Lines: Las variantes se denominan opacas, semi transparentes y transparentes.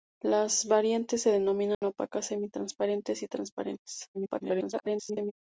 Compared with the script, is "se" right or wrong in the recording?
right